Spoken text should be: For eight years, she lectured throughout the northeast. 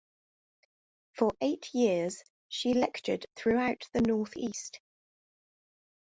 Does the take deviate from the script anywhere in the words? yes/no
no